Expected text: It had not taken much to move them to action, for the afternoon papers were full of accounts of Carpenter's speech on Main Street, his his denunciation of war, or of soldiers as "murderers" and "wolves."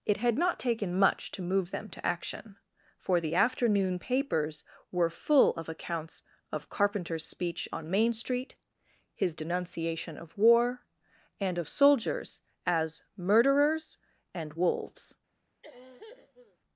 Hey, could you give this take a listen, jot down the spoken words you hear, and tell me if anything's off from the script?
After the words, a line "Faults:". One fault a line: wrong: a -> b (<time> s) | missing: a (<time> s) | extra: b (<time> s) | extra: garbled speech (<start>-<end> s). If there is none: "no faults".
It had not taken much to move them to action, for the afternoon papers were full of accounts of Carpenter's speech on Main Street, his denunciation of war, and of soldiers as "murderers" and "wolves."
Faults:
missing: his (9.3 s)
wrong: or -> and (11.4 s)